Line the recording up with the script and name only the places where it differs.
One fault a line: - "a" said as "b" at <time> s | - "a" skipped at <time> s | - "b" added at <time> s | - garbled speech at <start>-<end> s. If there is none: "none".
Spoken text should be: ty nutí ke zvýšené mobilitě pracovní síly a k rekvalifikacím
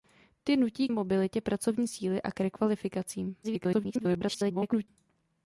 - "ke zvýšené" skipped at 0.9 s
- garbled speech at 3.4-4.9 s